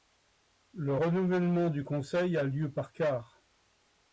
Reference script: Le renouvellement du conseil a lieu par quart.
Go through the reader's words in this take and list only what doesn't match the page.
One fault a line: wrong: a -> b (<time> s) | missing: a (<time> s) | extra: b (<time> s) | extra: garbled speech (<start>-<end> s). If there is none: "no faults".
no faults